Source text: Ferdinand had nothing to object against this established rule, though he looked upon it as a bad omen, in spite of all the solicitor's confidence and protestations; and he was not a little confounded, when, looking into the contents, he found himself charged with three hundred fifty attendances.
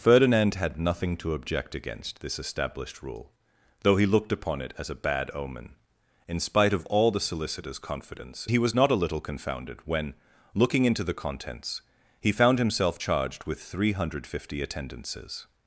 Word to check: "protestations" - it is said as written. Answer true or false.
false